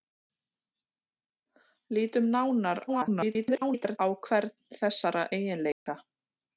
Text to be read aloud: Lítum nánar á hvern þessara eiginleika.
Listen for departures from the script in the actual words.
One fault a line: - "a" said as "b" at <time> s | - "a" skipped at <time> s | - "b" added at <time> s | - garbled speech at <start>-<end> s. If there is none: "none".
- garbled speech at 2.9-4.0 s